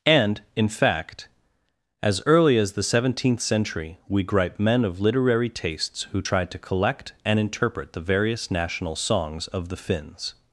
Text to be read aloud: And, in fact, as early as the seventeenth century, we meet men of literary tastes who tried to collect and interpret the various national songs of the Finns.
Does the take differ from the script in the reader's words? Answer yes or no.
yes